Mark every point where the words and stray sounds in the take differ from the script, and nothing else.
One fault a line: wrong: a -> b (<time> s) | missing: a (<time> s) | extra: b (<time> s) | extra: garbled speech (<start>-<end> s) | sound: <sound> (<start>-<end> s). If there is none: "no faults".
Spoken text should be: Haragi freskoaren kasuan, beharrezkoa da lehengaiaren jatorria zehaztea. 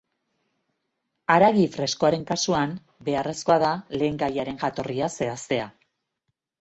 no faults